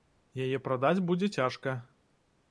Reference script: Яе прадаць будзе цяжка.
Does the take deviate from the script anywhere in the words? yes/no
no